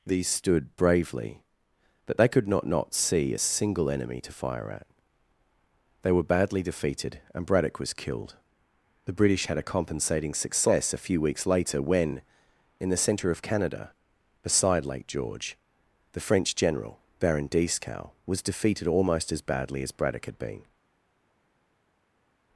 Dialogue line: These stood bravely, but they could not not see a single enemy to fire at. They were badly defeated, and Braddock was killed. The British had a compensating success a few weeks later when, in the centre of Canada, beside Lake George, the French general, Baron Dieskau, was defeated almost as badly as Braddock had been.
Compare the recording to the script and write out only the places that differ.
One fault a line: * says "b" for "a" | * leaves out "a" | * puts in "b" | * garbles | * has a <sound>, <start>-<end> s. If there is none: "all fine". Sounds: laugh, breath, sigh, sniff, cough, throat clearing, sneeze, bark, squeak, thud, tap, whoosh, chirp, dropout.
all fine